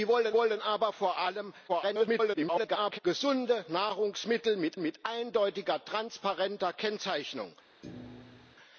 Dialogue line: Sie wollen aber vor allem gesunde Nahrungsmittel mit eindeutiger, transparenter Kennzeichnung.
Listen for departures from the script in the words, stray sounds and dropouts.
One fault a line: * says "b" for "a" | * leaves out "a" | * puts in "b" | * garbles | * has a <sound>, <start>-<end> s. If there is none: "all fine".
* puts in "wollen"
* garbles
* puts in "mit"
* has a thud, 7.8-8.6 s